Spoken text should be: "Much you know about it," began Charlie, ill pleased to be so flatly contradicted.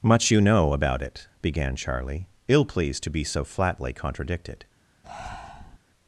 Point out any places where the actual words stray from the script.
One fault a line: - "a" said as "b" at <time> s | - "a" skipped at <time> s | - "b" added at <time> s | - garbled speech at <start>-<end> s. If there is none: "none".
none